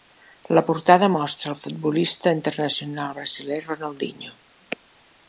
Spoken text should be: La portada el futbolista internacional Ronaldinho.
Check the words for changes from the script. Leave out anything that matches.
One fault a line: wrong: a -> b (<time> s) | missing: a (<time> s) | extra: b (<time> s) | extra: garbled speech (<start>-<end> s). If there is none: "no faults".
extra: mostra (1.1 s)
extra: brasiler (3.2 s)